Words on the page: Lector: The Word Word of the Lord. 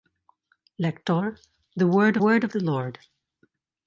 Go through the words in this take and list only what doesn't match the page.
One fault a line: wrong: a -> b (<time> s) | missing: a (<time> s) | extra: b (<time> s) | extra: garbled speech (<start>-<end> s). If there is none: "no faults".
no faults